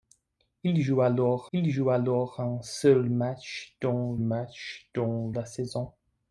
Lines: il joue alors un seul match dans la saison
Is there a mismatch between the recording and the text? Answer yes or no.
yes